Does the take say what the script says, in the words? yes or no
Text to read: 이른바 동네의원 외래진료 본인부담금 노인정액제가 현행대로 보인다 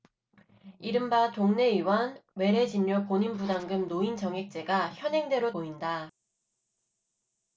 yes